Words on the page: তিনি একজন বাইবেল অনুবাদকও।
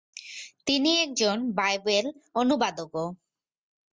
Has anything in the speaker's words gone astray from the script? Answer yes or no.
no